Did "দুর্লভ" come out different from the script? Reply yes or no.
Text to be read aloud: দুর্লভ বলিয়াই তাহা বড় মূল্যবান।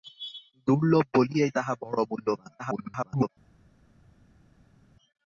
no